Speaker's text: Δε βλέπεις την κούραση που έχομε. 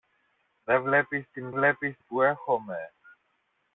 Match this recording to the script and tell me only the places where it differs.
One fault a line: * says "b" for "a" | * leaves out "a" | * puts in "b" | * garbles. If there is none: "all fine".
* says "βλέπεις" for "κούραση"